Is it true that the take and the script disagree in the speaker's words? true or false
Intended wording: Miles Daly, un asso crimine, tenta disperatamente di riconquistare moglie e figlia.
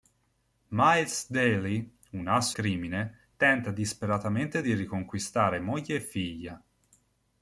false